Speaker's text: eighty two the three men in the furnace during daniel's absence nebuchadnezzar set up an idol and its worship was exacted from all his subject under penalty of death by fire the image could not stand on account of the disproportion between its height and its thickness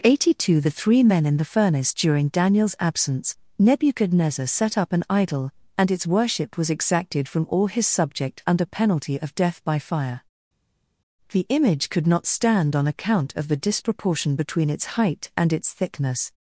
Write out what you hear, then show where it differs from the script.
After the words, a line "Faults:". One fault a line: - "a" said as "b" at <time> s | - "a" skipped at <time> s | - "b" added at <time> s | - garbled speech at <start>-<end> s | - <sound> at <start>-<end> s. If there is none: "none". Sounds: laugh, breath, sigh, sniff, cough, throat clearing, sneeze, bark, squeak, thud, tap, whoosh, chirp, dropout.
eighty two the three men in the furnace during daniel's absence nebuchadnezzar set up an idol and its worship was exacted from all his subject under penalty of death by fire the image could not stand on account of the disproportion between its height and its thickness
Faults:
none